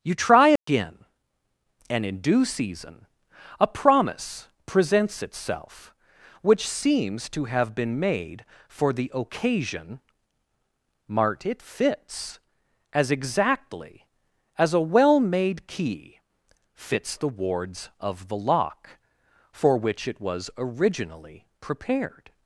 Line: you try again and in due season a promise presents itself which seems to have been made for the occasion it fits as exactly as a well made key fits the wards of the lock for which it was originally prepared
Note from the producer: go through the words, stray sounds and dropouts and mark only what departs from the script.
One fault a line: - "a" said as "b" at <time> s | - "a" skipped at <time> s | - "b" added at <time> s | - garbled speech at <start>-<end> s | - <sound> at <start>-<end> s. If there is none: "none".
- dropout at 0.6-0.7 s
- "mart" added at 11.1 s